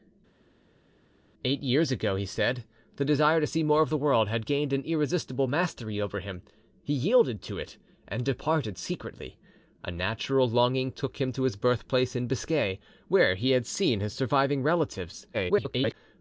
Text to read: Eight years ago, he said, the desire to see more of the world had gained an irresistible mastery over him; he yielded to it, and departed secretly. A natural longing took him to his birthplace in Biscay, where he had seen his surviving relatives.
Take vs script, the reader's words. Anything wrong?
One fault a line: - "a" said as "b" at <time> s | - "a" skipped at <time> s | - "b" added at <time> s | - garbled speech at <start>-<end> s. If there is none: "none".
- garbled speech at 15.3-15.9 s